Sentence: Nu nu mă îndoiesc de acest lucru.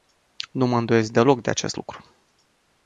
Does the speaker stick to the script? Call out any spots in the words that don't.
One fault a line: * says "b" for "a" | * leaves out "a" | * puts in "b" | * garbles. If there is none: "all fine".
* leaves out "nu"
* puts in "deloc"